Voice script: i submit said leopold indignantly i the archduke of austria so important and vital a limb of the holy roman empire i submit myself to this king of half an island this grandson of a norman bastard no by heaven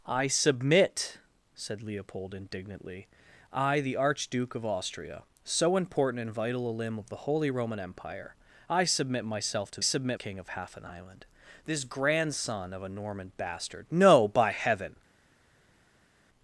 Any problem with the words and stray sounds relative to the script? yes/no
yes